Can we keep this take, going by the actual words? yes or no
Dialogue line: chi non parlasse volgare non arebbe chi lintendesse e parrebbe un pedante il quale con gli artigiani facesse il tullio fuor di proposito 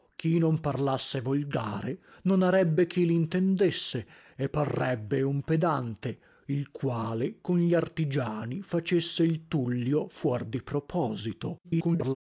no